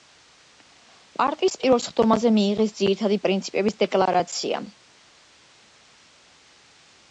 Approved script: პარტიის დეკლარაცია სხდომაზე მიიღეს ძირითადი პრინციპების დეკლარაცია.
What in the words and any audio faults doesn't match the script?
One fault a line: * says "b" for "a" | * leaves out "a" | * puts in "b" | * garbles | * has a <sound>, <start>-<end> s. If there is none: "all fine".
* says "პირველ" for "დეკლარაცია"